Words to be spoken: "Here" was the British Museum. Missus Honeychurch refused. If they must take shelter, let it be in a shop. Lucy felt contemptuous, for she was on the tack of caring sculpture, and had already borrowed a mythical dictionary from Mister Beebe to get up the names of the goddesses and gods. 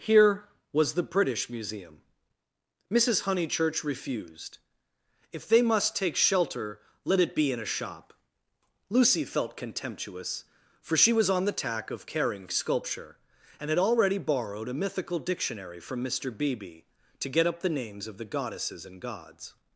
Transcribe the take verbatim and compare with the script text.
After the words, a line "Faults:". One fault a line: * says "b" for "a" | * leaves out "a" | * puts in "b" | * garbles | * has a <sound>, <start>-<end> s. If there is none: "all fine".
"Here" was the British Museum. Missus Honeychurch refused. If they must take shelter, let it be in a shop. Lucy felt contemptuous, for she was on the tack of caring sculpture, and had already borrowed a mythical dictionary from Mister Beebe to get up the names of the goddesses and gods.
Faults:
all fine